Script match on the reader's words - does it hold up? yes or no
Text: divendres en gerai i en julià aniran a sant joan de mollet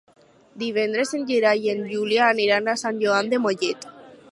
yes